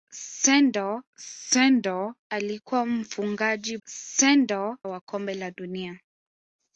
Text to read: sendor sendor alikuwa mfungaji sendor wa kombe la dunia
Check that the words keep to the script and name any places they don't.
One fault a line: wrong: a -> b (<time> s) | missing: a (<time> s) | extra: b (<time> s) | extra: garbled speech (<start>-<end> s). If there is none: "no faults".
no faults